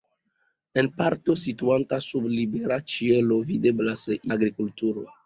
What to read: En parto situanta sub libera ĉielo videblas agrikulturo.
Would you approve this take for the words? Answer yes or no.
yes